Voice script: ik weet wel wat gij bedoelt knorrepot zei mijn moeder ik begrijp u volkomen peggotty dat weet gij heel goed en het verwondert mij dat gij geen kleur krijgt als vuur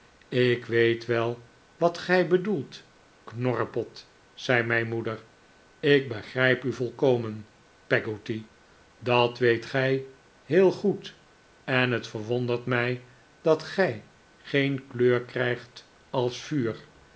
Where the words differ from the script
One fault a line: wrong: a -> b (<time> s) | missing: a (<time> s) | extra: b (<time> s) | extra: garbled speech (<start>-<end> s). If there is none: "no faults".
no faults